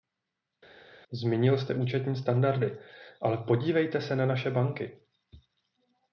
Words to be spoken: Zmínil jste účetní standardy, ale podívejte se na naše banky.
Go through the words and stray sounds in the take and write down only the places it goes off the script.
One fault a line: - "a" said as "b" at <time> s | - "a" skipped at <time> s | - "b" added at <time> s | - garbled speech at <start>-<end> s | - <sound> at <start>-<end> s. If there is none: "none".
none